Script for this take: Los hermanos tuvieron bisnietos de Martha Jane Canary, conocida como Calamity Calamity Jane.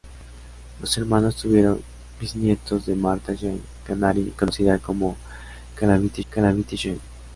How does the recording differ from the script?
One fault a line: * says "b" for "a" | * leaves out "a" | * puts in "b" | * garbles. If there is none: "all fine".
all fine